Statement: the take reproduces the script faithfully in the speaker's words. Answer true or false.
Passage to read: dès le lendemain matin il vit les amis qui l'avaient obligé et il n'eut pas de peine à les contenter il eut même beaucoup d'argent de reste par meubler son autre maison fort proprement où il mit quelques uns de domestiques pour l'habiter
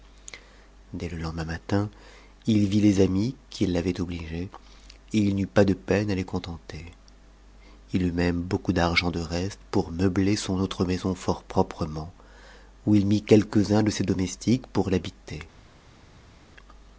false